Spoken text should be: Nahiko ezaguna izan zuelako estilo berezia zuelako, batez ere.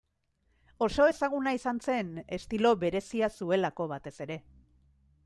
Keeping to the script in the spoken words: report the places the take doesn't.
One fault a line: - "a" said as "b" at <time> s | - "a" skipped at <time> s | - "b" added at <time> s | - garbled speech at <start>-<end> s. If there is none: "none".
- "Nahiko" said as "Oso" at 0.8 s
- "zuelako" said as "zen" at 1.9 s